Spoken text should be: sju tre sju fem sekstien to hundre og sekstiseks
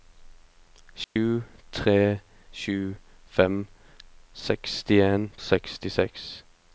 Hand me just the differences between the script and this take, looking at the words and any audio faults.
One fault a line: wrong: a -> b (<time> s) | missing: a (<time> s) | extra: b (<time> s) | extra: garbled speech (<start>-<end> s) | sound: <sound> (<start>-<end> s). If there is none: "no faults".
sound: dropout (1.0-1.2 s)
missing: to hundre (5.3 s)